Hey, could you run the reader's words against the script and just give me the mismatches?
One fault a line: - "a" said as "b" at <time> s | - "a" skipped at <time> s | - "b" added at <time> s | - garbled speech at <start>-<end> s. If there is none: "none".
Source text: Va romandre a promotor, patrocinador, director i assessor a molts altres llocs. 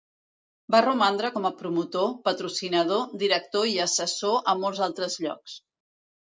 - "com" added at 1.3 s